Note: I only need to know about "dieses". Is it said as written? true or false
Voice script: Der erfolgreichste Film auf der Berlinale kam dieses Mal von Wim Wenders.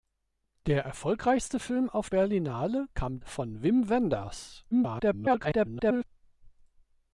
false